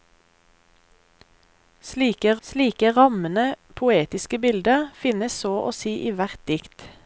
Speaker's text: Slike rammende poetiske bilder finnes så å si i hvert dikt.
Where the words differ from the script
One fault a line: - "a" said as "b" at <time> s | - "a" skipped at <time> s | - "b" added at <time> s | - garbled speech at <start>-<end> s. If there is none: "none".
- "slike" added at 2.4 s